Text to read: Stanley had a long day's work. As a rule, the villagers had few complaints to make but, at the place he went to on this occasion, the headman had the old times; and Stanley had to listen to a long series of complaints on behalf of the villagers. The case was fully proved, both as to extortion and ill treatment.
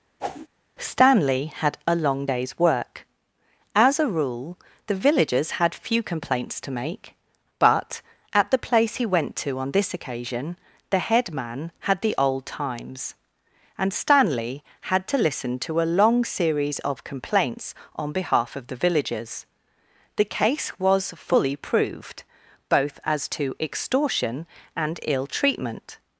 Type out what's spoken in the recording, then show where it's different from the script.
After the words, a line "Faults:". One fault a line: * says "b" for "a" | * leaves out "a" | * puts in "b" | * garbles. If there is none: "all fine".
Stanley had a long day's work. As a rule, the villagers had few complaints to make but, at the place he went to on this occasion, the headman had the old times; and Stanley had to listen to a long series of complaints on behalf of the villagers. The case was fully proved, both as to extortion and ill treatment.
Faults:
all fine